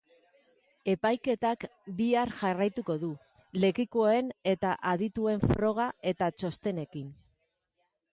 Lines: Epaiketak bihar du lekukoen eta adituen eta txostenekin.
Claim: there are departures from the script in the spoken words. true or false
true